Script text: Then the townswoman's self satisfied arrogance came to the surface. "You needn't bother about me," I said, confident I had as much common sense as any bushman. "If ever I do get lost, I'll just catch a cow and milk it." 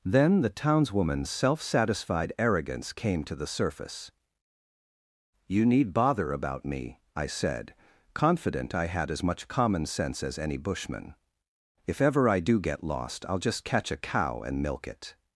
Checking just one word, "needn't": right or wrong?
wrong